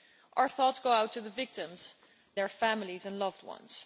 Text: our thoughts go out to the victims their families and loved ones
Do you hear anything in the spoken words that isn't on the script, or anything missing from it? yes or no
no